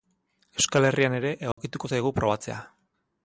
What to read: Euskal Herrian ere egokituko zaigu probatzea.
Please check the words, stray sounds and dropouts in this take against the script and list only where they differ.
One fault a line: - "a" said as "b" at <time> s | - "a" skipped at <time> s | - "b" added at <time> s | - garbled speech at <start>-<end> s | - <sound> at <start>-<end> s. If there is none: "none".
- dropout at 1.5-1.6 s